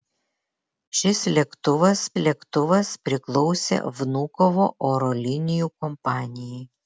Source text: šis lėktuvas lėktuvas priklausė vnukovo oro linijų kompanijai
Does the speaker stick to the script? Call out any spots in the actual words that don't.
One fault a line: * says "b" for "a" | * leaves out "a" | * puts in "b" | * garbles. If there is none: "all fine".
all fine